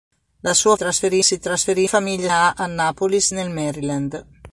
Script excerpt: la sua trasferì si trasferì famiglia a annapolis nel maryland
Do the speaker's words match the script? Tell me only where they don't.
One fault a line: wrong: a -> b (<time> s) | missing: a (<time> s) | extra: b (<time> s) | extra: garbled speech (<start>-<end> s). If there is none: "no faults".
no faults